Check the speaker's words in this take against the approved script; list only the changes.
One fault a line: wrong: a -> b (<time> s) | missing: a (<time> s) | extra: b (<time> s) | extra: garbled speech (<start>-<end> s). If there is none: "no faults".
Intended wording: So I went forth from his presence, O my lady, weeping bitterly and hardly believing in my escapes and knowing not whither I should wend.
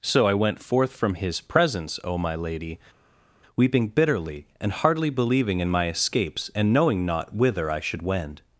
no faults